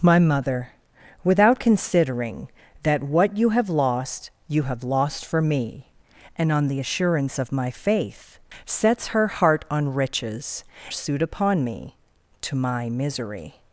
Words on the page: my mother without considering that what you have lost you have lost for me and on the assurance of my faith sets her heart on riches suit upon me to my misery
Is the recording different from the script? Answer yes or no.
no